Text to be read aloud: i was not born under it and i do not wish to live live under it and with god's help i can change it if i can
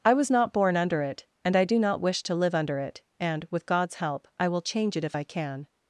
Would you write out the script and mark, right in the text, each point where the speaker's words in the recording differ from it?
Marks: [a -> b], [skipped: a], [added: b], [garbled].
i was not born under it and i do not wish to live [skipped: live] under it and with god's help i [can -> will] change it if i can